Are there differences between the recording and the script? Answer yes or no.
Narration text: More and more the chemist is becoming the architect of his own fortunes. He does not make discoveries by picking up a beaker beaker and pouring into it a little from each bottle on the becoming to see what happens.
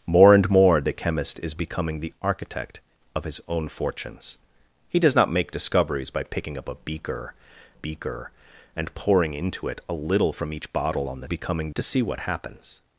no